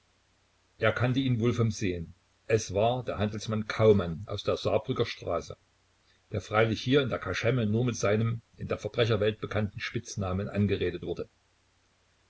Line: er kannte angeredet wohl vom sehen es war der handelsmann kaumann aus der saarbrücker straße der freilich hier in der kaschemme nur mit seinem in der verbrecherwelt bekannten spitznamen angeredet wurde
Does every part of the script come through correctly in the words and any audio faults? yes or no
no